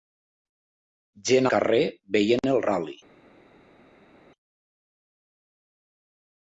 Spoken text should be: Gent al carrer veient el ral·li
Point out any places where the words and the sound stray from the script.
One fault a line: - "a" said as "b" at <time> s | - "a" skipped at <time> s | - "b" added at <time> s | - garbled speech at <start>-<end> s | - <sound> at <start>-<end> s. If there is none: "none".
- "al" skipped at 1.5 s